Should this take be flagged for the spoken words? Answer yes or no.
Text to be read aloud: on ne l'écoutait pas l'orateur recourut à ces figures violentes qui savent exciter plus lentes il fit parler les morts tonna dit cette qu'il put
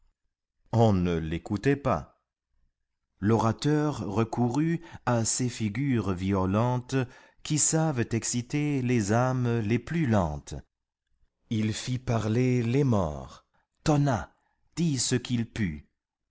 yes